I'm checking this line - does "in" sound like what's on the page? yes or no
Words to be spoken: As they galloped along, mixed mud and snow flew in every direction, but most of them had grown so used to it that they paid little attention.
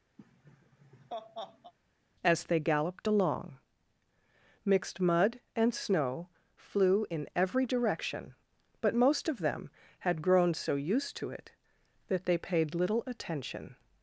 yes